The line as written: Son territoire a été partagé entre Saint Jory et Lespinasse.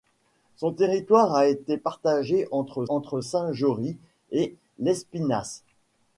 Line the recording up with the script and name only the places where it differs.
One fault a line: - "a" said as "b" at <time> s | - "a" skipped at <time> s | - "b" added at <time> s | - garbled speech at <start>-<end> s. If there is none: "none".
- "entre" added at 2.9 s